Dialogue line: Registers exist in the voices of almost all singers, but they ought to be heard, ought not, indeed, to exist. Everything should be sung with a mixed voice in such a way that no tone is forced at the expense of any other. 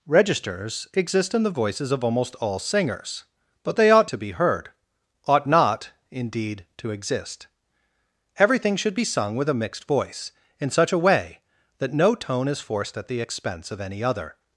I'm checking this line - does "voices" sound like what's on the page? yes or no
yes